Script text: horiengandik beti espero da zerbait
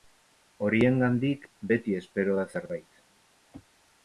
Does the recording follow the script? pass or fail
pass